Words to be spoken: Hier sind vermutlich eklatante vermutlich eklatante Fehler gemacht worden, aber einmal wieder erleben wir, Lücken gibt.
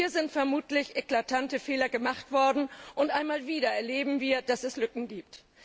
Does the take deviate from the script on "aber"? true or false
true